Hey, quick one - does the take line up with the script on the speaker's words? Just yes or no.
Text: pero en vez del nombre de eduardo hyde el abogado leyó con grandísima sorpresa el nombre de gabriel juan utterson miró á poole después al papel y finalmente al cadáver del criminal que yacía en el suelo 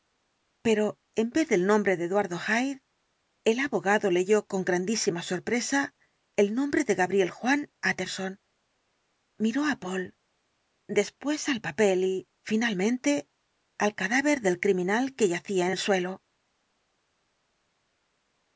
yes